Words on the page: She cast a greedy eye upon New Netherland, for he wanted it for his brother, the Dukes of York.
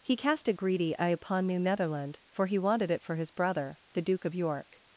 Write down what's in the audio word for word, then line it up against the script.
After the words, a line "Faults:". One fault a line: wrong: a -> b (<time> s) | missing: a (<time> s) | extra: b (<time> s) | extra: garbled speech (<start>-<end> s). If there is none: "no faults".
He cast a greedy eye upon New Netherland, for he wanted it for his brother, the Duke of York.
Faults:
wrong: She -> He (0.0 s)
wrong: Dukes -> Duke (4.0 s)